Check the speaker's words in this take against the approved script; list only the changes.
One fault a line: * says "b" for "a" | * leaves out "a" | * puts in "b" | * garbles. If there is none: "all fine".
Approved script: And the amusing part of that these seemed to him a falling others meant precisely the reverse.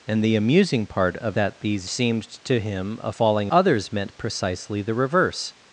all fine